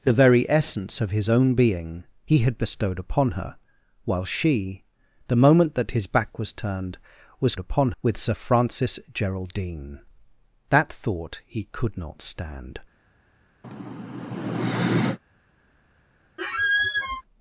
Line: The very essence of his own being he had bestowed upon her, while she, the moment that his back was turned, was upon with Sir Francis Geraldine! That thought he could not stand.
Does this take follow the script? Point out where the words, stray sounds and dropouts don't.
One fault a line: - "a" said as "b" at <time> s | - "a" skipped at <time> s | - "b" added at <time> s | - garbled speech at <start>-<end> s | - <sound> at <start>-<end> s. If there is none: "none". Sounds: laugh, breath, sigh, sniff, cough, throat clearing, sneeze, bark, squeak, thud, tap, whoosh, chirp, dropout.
- sigh at 13.6-15.2 s
- squeak at 16.4-17.2 s